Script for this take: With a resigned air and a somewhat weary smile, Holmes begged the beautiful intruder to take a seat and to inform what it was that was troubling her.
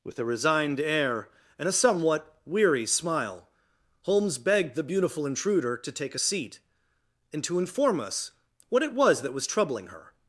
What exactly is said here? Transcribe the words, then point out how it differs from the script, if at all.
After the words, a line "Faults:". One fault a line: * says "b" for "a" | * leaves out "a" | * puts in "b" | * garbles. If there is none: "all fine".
With a resigned air and a somewhat weary smile, Holmes begged the beautiful intruder to take a seat and to inform us what it was that was troubling her.
Faults:
* puts in "us"